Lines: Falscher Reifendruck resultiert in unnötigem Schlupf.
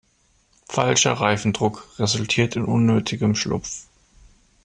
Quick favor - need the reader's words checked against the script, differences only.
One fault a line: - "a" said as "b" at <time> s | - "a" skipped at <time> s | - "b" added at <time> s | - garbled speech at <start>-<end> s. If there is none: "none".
none